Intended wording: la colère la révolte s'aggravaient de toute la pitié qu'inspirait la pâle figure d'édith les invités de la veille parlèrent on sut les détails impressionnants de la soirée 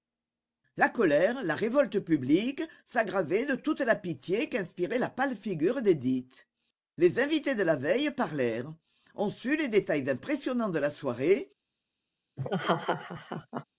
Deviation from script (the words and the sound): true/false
true